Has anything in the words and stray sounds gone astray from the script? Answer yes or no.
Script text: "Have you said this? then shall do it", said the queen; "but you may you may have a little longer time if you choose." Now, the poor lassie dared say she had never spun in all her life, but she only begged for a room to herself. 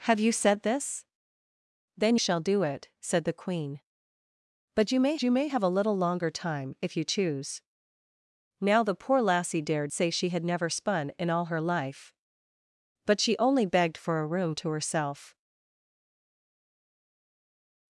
no